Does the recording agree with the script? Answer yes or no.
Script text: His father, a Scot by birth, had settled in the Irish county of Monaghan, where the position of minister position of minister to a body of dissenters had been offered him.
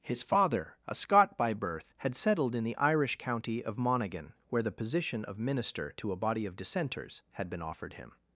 no